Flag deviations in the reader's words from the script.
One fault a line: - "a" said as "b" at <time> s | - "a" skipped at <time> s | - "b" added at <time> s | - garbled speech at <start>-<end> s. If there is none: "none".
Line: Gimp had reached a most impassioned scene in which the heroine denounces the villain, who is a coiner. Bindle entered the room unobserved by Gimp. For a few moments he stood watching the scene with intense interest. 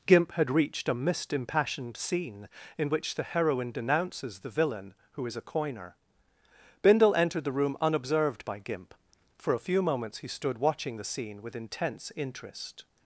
- "most" said as "mist" at 0.9 s